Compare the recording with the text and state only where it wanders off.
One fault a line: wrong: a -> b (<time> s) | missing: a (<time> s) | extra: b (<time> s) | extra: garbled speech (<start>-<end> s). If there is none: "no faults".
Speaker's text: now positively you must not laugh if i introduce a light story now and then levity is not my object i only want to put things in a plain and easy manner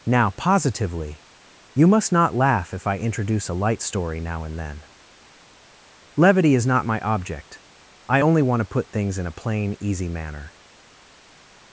missing: and (9.8 s)